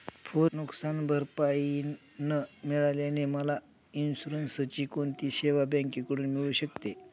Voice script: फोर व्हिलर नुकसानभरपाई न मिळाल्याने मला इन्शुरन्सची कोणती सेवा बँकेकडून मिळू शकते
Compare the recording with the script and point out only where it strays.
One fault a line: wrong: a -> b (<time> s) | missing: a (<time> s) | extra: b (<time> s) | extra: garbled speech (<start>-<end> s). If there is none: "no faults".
missing: व्हिलर (0.5 s)